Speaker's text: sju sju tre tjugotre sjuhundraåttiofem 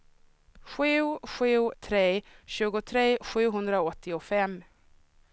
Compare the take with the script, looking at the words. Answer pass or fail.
pass